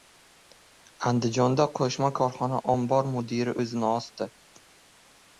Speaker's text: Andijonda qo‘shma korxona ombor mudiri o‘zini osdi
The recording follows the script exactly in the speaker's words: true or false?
true